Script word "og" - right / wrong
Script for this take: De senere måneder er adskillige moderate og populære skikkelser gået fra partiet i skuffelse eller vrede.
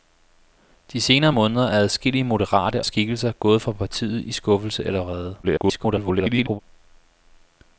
wrong